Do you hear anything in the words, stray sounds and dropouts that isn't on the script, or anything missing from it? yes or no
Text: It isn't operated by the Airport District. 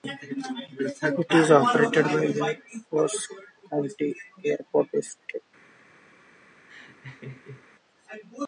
yes